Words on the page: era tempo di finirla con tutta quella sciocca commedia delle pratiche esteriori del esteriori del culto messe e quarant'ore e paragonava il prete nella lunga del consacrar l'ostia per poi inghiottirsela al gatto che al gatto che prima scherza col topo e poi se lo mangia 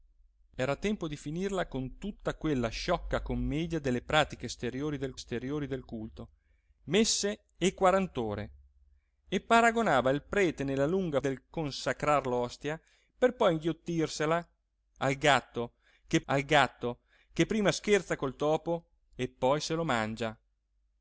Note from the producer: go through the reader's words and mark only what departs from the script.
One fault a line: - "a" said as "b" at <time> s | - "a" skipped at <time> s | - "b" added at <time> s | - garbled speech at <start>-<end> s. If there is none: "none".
none